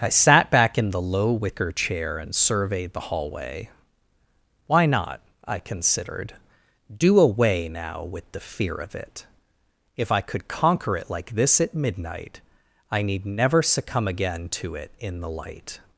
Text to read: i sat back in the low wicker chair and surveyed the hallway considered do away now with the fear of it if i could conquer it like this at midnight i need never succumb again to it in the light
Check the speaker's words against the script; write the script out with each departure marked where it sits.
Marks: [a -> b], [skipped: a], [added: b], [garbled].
i sat back in the low wicker chair and surveyed the hallway [added: why not i] considered do away now with the fear of it if i could conquer it like this at midnight i need never succumb again to it in the light